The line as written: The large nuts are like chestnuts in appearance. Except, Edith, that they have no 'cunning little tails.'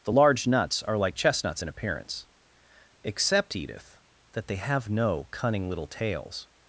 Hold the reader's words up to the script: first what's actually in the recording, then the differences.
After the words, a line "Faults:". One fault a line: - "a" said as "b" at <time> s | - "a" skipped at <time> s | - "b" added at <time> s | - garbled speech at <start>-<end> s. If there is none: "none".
The large nuts are like chestnuts in appearance. Except, Edith, that they have no 'cunning little tails.'
Faults:
none